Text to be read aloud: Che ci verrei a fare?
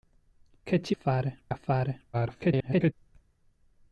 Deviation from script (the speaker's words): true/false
true